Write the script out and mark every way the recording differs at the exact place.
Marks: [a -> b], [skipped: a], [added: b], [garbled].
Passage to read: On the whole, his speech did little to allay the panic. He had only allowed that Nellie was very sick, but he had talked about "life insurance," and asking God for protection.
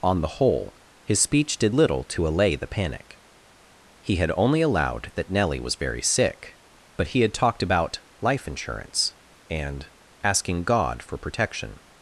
On the whole, his speech did little to allay the panic. He had only allowed that Nellie was very sick, but he had talked about "life insurance," and asking God for protection.